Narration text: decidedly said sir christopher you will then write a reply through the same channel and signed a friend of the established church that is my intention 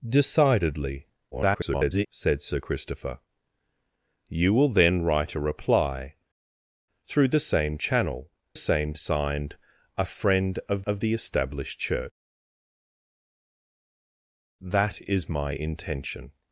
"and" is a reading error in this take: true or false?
true